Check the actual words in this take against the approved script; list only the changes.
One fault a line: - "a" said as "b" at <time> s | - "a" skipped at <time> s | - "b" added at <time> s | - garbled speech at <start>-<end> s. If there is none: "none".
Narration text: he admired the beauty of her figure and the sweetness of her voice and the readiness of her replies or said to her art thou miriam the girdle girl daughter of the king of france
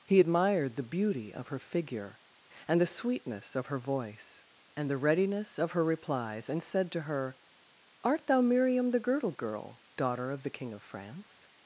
- "or" said as "and" at 6.5 s